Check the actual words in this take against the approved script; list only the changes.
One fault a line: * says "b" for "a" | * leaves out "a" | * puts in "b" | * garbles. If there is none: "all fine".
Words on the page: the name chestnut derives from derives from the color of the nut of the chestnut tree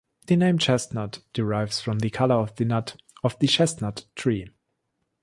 * leaves out "derives from"